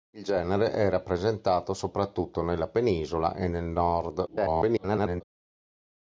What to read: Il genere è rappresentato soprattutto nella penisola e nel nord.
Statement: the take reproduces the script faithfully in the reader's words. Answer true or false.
false